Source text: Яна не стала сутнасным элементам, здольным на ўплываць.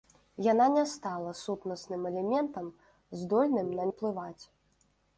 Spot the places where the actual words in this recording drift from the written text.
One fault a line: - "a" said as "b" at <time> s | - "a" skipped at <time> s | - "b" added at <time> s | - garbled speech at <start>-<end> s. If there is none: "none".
none